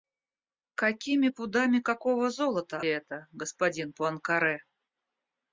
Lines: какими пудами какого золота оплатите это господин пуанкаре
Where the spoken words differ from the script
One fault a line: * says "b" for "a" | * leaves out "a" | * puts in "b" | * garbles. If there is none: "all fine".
* leaves out "оплатите"